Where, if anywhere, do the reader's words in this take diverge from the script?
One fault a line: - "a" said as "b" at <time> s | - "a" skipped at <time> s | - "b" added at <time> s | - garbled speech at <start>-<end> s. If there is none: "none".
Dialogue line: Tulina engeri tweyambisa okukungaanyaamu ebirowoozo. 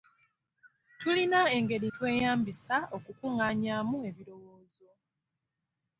none